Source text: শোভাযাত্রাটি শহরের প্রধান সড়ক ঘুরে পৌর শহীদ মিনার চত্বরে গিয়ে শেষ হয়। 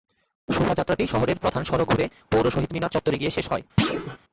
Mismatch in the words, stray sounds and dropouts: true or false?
true